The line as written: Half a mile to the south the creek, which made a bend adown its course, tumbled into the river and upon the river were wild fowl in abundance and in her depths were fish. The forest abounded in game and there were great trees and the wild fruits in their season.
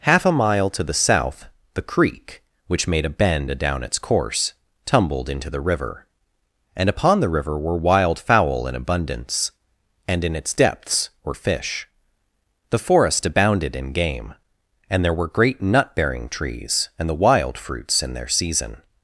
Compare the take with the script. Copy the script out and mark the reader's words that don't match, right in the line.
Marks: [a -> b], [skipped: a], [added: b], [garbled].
Half a mile to the south the creek, which made a bend adown its course, tumbled into the river and upon the river were wild fowl in abundance and in [her -> its] depths were fish. The forest abounded in game and there were great [added: nut bearing] trees and the wild fruits in their season.